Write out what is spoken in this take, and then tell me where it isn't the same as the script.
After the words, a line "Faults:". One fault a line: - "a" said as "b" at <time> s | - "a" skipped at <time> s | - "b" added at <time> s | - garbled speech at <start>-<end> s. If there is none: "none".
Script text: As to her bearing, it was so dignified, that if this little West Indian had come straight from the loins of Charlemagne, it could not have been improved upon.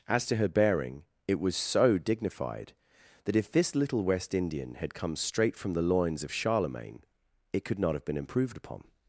As to her bearing, it was so dignified, that if this little West Indian had come straight from the loins of Charlemagne, it could not have been improved upon.
Faults:
none